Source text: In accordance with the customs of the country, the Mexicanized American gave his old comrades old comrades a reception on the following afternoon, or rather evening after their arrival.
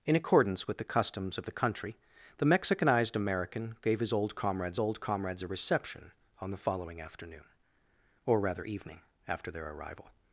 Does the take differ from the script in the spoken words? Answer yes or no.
no